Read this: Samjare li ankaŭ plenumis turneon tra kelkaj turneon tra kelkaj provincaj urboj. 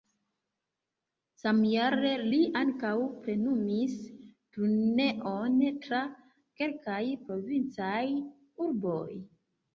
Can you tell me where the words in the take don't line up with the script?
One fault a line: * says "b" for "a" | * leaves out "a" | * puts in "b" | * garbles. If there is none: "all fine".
* leaves out "turneon tra kelkaj"